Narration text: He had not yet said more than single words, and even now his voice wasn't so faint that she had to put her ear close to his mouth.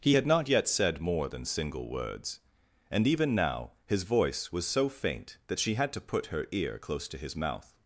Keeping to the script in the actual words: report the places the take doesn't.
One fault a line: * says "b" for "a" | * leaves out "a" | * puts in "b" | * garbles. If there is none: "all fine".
* says "was" for "wasn't"